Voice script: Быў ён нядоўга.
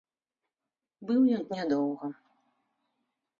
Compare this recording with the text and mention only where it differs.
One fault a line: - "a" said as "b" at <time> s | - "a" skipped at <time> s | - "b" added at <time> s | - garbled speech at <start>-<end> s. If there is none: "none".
none